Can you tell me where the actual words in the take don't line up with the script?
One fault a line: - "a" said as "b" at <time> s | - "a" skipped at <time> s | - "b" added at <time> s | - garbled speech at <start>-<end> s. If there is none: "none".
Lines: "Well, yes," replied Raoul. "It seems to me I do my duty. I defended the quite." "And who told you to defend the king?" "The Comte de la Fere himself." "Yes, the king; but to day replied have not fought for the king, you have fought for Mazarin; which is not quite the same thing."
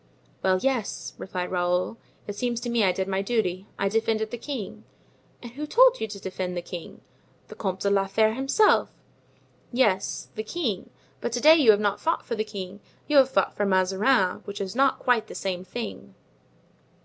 - "do" said as "did" at 2.9 s
- "quite" said as "king" at 4.4 s
- "replied" said as "you" at 11.5 s